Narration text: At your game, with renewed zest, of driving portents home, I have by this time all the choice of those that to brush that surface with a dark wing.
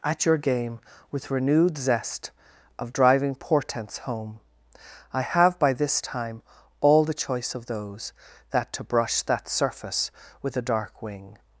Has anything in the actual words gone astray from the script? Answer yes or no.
no